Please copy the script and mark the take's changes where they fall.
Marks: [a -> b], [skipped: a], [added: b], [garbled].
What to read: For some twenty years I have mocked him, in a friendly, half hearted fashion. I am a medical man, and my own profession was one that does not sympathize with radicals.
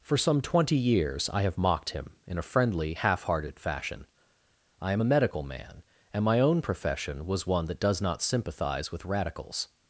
For some twenty years I have mocked him, in a friendly, half hearted fashion. I am a medical man, and my own profession was one that does not sympathize with radicals.